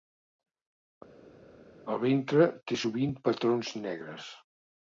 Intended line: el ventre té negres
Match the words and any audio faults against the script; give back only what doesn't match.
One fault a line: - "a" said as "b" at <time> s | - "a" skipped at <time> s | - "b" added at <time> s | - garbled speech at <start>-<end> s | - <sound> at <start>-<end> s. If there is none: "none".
- "sovint patrons" added at 2.8 s